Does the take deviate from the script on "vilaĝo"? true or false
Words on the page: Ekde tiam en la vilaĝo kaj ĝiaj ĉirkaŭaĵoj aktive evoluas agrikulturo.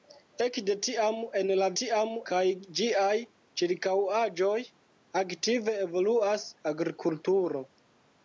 true